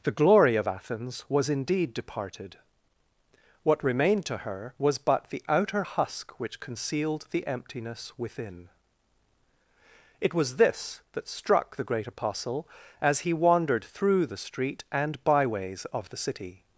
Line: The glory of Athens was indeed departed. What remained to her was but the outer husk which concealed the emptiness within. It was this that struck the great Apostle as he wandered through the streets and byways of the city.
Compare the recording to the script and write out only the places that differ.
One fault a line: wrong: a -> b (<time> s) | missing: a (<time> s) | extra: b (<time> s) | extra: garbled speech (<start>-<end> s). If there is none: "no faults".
wrong: streets -> street (14.4 s)